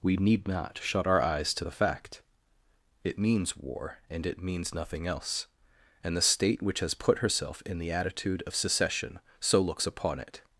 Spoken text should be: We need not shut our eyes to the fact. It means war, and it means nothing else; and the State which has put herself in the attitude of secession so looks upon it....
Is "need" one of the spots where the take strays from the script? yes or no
no